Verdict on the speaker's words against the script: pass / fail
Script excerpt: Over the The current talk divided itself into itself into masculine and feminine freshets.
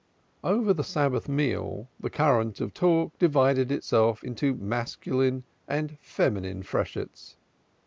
fail